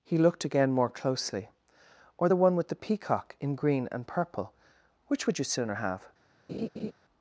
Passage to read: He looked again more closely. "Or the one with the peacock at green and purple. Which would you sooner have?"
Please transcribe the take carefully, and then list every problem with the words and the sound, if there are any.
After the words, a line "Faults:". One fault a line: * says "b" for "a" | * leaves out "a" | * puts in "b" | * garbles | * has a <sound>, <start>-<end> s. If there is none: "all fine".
He looked again more closely. "Or the one with the peacock in green and purple. Which would you sooner have?"
Faults:
* says "in" for "at"
* has a laugh, 6.5-6.9 s